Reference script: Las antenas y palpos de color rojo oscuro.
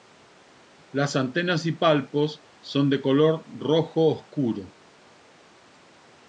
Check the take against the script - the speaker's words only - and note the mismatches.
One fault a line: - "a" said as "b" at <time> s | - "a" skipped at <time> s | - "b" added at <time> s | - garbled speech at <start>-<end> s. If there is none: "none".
- "son" added at 2.6 s